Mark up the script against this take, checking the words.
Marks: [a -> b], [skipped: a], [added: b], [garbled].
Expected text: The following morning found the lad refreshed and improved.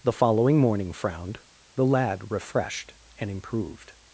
The following morning [found -> frowned] the lad refreshed and improved.